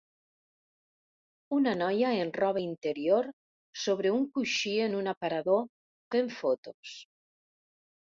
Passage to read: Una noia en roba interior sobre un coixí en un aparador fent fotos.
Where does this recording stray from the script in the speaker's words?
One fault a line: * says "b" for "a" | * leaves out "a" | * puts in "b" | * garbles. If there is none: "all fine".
all fine